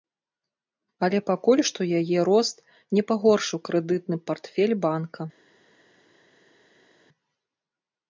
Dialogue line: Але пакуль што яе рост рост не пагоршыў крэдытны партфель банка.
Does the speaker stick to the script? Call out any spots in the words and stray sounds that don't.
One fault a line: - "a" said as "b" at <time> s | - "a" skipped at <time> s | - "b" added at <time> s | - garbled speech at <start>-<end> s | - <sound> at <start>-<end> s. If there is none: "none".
- "рост" skipped at 2.6 s